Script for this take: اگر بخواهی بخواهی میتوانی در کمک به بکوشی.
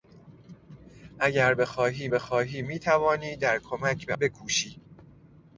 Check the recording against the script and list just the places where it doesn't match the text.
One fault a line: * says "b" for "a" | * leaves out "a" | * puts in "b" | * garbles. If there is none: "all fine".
all fine